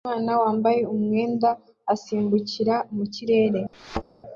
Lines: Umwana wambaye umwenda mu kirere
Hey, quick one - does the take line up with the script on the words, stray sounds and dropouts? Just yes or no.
no